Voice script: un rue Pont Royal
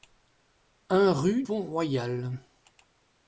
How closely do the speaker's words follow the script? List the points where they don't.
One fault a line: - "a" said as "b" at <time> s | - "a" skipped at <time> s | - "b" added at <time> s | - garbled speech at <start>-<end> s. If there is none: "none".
none